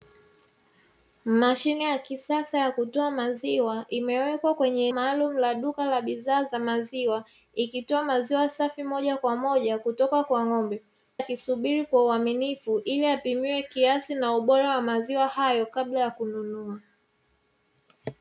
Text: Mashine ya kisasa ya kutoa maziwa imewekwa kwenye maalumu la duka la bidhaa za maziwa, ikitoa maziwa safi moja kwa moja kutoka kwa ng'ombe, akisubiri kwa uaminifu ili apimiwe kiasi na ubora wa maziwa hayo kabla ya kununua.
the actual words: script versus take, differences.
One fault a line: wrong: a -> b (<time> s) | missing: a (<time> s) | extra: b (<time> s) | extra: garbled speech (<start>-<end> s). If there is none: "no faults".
no faults